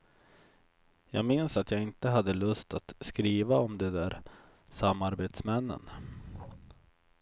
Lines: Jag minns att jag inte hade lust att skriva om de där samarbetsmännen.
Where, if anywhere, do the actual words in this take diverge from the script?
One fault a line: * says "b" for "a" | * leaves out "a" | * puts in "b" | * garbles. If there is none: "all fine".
all fine